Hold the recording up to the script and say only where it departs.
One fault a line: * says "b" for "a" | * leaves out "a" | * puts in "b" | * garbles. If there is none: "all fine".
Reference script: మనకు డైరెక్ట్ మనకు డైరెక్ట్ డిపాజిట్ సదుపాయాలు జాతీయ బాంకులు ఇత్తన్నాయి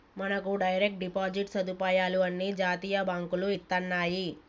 * leaves out "మనకు డైరెక్ట్"
* puts in "అన్ని"